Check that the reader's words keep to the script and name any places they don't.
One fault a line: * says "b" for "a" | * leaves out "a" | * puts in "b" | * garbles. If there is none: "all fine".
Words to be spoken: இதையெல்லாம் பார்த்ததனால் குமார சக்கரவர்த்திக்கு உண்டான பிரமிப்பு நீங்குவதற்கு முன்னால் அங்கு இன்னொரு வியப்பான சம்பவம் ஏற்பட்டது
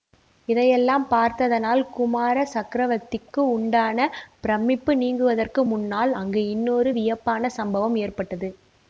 all fine